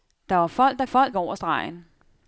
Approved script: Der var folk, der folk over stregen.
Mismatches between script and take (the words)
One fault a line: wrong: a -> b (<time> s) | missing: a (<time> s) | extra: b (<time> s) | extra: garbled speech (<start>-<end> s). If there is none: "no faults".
no faults